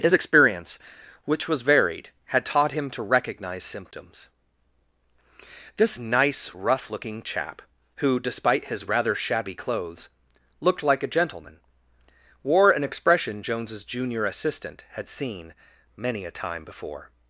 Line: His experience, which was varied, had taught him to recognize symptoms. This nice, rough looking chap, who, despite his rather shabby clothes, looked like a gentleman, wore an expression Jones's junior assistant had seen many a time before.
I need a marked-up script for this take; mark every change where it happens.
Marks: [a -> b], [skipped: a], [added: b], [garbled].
His experience, which was varied, had taught him to recognize symptoms. This nice, rough looking chap, who, despite his rather shabby clothes, looked like a gentleman, wore an expression Jones's junior assistant had seen many a time before.